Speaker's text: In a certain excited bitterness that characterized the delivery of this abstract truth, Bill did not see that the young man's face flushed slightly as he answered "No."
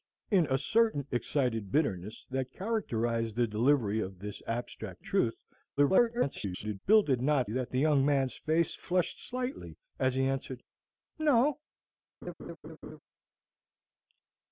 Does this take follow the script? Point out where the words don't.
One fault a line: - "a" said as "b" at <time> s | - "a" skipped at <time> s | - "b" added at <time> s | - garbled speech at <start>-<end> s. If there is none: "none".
- garbled speech at 5.8-6.8 s
- "see" skipped at 7.5 s